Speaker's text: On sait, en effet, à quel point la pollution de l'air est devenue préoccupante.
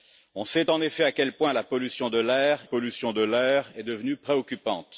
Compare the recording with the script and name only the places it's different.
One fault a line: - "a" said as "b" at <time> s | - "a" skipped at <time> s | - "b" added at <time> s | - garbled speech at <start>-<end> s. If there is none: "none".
- "pollution de l'air" added at 2.6 s